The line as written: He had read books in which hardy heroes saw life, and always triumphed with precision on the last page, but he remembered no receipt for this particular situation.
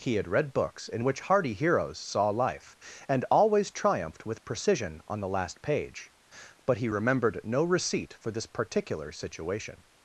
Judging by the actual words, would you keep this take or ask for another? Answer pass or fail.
pass